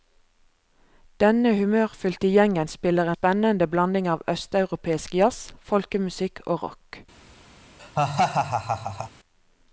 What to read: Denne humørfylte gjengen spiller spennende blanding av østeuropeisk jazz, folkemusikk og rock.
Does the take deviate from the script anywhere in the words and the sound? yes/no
yes